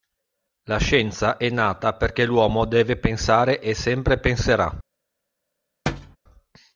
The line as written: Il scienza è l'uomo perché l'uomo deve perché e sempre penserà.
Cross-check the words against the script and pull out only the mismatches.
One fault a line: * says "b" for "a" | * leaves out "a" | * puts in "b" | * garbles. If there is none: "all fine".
* says "La" for "Il"
* says "nata" for "l'uomo"
* says "pensare" for "perché"